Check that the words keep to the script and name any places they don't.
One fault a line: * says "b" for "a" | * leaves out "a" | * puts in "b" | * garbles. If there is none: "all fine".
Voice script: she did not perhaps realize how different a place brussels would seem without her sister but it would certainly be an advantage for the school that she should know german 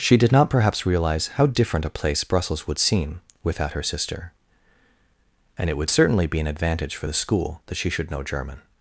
* says "and" for "but"